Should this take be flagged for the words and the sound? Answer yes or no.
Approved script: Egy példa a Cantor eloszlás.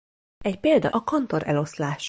no